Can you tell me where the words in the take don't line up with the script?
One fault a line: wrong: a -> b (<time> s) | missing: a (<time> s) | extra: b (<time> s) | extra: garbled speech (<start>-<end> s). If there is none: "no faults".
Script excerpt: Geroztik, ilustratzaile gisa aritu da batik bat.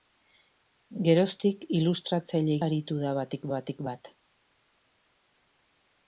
missing: gisa (2.5 s)
extra: batik (3.6 s)